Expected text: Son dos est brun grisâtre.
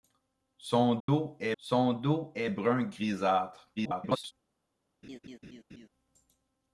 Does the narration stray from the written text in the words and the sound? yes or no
yes